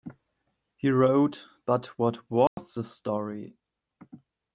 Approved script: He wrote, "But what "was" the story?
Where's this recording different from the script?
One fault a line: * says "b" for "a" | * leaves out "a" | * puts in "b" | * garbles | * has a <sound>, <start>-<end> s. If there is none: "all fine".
* has a dropout, 2.5-2.6 s